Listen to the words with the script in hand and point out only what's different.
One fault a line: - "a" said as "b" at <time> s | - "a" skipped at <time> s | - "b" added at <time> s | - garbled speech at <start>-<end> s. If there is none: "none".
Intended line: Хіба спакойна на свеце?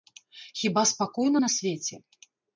none